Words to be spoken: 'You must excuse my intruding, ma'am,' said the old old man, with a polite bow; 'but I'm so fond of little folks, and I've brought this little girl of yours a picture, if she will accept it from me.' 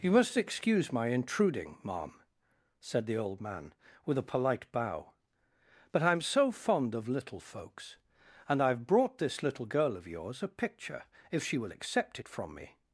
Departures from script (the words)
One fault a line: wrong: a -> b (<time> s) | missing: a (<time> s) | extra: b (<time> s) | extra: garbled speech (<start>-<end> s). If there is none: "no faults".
missing: old (3.4 s)